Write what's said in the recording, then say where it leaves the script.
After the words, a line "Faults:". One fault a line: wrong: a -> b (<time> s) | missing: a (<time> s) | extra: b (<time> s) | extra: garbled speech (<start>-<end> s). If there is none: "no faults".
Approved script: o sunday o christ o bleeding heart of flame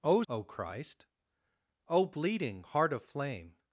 o o christ o bleeding heart of flame
Faults:
missing: sunday (0.2 s)